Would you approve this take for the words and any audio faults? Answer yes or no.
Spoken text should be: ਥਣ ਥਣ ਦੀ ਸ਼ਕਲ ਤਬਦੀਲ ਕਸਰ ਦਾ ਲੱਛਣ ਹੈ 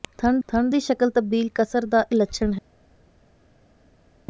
yes